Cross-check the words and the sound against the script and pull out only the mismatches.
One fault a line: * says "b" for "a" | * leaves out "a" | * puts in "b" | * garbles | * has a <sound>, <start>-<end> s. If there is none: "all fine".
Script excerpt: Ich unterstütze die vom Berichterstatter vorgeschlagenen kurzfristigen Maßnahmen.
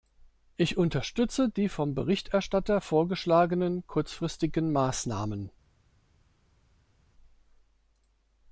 all fine